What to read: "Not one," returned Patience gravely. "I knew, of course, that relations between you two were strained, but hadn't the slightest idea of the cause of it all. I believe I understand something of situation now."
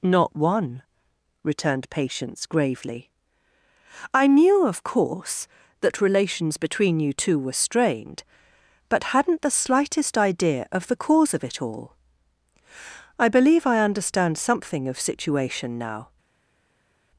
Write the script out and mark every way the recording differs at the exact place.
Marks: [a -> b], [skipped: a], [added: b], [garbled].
"Not one," returned Patience gravely. "I knew, of course, that relations between you two were strained, but hadn't the slightest idea of the cause of it all. I believe I understand something of situation now."